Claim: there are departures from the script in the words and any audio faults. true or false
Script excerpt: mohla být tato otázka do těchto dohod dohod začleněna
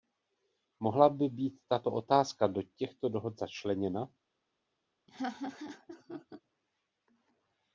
true